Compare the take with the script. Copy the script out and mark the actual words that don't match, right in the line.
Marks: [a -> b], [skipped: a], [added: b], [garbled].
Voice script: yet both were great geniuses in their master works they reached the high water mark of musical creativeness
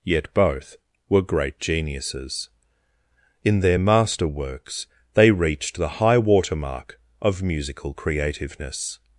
yet both were great geniuses in their master works they reached the high water mark of musical creativeness